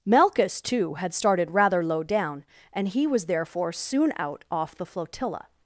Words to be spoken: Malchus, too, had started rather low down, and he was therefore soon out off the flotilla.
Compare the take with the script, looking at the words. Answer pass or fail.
pass